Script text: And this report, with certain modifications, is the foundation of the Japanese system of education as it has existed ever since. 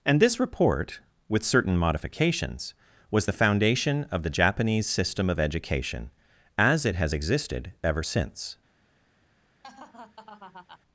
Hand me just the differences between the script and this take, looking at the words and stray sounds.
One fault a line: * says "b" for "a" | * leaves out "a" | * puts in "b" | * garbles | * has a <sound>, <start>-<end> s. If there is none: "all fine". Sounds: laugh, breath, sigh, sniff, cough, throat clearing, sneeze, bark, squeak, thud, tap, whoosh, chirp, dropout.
* says "was" for "is"
* has a laugh, 9.6-10.8 s